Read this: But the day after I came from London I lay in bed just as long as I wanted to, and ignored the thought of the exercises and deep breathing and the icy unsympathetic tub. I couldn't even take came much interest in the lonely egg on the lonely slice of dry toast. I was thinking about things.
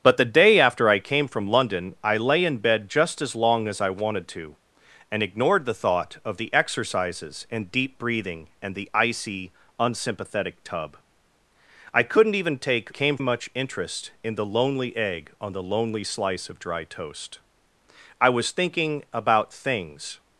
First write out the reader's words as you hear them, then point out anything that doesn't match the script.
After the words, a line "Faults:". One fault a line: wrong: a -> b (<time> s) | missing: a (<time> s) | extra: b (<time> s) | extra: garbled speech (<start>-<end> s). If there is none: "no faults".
But the day after I came from London I lay in bed just as long as I wanted to, and ignored the thought of the exercises and deep breathing and the icy unsympathetic tub. I couldn't even take came much interest in the lonely egg on the lonely slice of dry toast. I was thinking about things.
Faults:
no faults